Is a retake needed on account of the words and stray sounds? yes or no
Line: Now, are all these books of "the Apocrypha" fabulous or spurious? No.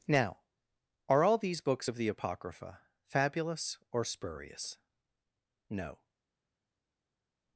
no